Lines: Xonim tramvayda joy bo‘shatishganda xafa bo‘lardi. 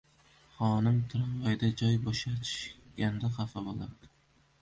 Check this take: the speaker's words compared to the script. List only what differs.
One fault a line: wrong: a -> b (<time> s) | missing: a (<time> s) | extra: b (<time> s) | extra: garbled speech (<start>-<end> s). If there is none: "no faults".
no faults